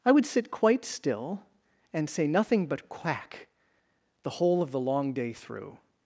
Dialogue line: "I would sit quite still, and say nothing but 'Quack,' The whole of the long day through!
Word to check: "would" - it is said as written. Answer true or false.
true